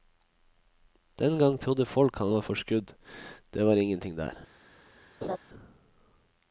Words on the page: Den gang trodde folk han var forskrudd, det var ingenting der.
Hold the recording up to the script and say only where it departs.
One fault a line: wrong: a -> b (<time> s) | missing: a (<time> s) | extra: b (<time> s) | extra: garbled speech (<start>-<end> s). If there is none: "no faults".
no faults